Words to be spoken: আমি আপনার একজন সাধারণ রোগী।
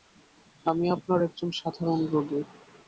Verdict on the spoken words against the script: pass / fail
pass